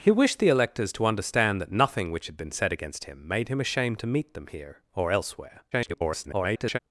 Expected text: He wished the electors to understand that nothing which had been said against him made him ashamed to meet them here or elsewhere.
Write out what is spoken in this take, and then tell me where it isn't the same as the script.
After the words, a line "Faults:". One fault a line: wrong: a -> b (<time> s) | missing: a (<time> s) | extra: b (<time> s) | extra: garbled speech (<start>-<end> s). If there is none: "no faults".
He wished the electors to understand that nothing which had been said against him made him ashamed to meet them here or elsewhere. [garbled]
Faults:
extra: garbled speech (5.7-6.8 s)